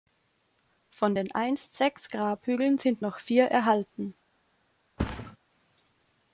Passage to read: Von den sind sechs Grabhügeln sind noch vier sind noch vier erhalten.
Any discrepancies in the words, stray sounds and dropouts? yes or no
yes